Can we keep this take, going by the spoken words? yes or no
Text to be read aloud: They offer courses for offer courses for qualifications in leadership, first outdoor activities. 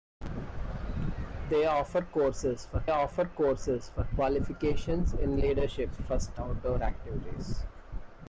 yes